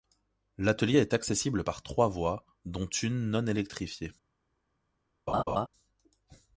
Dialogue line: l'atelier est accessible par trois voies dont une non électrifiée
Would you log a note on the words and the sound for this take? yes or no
yes